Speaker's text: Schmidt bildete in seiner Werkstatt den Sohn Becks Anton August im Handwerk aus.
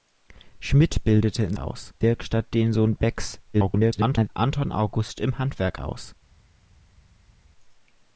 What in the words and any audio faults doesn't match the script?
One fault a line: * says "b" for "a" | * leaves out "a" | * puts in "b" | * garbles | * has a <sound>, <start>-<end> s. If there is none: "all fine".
* says "aus" for "seiner"
* garbles